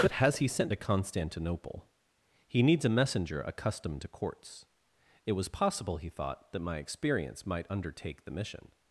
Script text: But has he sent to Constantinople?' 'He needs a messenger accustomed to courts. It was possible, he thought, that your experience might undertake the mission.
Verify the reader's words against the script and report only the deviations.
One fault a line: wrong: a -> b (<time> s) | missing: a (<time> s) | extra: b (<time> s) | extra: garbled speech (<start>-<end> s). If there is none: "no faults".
wrong: your -> my (6.6 s)